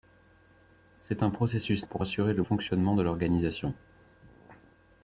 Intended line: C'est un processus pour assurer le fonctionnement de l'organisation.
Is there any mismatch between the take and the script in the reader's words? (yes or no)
no